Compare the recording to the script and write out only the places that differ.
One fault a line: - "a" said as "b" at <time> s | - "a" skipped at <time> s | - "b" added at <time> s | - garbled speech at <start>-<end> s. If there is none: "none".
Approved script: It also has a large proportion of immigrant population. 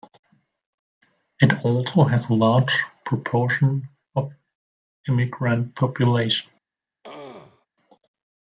none